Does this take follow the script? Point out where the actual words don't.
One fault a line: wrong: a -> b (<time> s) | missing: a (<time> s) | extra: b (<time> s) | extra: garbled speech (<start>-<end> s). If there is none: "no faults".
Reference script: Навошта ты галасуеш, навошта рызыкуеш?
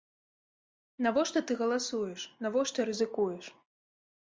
no faults